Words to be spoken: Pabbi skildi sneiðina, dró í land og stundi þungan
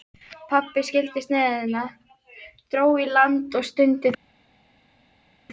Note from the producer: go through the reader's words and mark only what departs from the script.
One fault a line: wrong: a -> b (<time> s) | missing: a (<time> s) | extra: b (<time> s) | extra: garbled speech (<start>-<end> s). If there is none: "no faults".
no faults